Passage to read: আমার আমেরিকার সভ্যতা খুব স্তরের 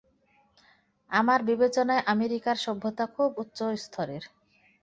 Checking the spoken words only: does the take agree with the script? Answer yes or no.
no